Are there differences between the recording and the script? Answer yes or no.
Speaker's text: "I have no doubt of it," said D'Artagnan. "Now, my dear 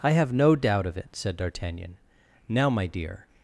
no